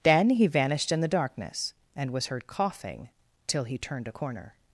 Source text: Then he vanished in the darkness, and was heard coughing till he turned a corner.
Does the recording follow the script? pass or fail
pass